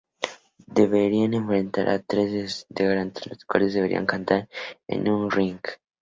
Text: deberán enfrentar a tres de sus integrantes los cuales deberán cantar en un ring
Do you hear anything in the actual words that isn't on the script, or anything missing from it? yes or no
no